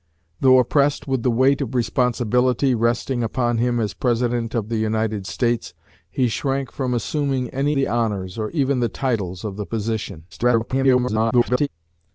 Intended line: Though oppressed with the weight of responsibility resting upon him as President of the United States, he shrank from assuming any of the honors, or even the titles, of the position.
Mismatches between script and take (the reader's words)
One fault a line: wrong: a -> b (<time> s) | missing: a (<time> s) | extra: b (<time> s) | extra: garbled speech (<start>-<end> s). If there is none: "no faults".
missing: of (7.8 s)
extra: garbled speech (10.3-11.7 s)